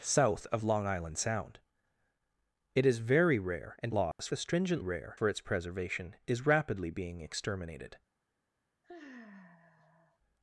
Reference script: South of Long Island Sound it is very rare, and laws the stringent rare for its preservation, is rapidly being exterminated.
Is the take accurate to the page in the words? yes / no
yes